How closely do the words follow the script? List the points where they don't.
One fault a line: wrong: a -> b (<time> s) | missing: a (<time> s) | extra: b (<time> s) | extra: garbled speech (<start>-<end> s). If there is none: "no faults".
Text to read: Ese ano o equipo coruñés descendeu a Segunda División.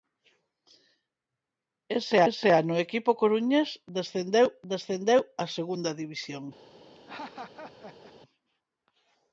extra: ese (2.3 s)
extra: descendeu (4.7 s)